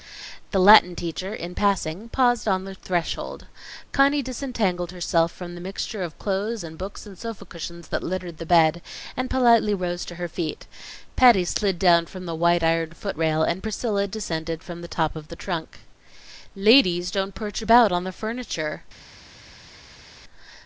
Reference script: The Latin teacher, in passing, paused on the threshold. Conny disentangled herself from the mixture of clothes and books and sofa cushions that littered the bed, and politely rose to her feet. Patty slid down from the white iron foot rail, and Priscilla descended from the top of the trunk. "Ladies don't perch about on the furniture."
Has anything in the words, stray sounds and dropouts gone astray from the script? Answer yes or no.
no